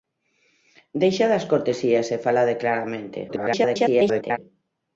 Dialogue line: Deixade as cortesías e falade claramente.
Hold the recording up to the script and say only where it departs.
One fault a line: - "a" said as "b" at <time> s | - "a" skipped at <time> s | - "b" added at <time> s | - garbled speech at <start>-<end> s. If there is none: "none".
- garbled speech at 3.3-4.4 s